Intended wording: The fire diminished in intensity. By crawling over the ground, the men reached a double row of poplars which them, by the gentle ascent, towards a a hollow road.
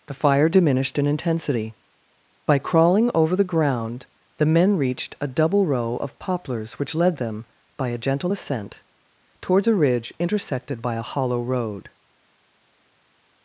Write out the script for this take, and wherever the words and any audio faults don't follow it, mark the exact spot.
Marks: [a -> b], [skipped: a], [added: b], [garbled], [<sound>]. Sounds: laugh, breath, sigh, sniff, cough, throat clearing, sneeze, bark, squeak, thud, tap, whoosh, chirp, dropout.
The fire diminished in intensity. By crawling over the ground, the men reached a double row of poplars which [added: led] them, by [the -> a] gentle ascent, towards a [added: ridge intersected by] a hollow road.